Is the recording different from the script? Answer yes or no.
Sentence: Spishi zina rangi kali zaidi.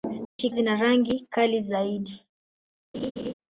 no